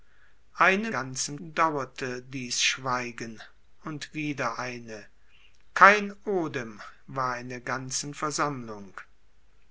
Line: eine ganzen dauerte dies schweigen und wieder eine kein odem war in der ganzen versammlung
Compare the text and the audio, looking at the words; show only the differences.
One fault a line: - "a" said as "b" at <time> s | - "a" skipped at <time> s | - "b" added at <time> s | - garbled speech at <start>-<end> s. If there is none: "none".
none